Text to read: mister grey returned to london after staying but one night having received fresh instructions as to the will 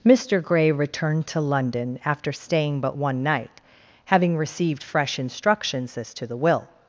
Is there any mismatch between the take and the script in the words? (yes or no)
no